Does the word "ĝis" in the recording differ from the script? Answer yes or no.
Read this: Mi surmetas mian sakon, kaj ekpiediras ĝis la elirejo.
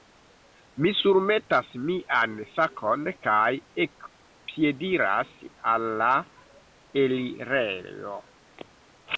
yes